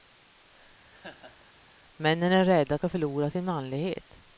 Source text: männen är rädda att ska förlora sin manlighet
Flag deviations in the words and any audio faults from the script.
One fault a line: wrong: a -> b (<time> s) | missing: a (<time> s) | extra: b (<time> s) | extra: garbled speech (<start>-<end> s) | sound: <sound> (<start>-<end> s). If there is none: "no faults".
sound: laugh (0.9-1.5 s)